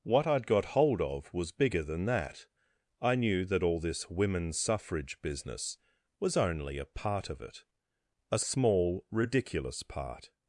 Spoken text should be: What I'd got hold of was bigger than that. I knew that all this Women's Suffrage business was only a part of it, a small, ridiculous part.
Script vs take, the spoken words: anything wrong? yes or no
no